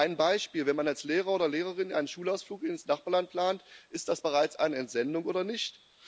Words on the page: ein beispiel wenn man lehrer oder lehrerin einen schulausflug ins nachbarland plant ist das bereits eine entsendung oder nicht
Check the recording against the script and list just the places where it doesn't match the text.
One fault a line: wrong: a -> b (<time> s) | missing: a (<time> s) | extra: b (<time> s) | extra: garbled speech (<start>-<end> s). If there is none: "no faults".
extra: als (0.9 s)